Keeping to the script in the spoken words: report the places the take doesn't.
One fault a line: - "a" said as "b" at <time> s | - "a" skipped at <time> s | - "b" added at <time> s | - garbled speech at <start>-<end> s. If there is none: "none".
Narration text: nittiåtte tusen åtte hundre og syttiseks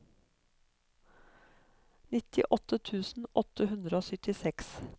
none